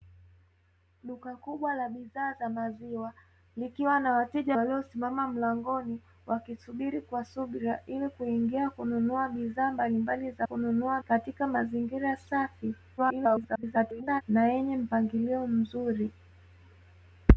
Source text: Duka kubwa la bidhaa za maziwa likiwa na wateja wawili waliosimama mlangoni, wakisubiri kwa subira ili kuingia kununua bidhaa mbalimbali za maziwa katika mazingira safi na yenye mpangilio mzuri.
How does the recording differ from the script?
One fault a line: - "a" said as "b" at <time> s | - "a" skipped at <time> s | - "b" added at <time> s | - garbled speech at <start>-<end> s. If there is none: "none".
- "wawili" skipped at 4.6 s
- "maziwa" said as "kununua" at 10.4 s
- garbled speech at 13.0-14.2 s